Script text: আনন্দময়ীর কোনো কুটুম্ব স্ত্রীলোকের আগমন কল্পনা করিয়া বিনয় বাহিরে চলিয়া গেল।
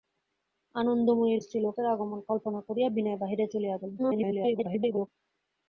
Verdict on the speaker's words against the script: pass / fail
fail